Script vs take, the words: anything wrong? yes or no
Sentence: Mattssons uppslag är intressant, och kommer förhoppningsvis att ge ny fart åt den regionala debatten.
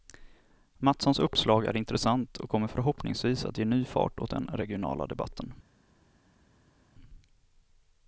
no